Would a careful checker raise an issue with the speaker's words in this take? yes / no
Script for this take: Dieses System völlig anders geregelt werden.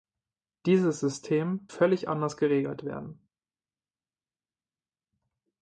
no